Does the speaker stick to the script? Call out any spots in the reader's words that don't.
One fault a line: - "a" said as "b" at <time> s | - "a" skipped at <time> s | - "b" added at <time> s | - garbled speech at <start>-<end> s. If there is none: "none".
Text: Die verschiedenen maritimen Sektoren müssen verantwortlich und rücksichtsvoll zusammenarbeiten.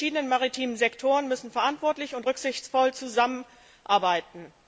none